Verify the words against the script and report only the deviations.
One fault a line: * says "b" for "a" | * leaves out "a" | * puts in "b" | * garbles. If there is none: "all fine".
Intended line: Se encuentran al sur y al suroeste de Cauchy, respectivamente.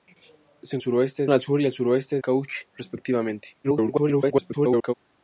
* says "suroeste" for "encuentran"
* leaves out "de"
* garbles